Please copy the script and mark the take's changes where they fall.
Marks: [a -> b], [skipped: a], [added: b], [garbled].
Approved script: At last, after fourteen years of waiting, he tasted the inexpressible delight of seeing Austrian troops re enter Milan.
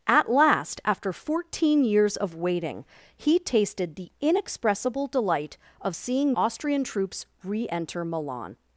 At last, after fourteen years of waiting, he tasted the inexpressible delight of seeing Austrian troops re enter Milan.